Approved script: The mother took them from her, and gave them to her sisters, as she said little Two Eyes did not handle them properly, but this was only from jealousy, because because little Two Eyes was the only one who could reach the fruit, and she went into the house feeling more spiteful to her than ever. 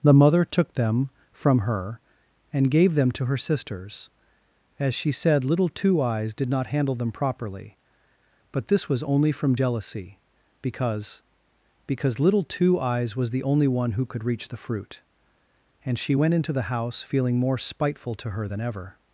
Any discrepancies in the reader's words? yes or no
no